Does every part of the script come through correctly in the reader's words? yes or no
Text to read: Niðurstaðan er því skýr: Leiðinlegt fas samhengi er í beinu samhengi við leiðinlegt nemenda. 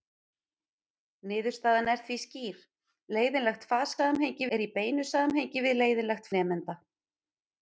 yes